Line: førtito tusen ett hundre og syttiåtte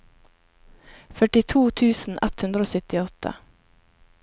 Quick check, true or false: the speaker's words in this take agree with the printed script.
true